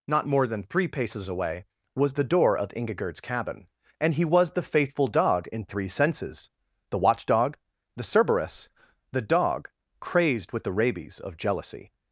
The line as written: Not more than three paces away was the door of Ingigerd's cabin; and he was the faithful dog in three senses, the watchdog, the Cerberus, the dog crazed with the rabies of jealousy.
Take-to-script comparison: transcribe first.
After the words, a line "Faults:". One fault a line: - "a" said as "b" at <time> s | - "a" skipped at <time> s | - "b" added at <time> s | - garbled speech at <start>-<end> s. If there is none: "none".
Not more than three paces away was the door of Ingigerd's cabin; and he was the faithful dog in three senses, the watchdog, the Cerberus, the dog crazed with the rabies of jealousy.
Faults:
none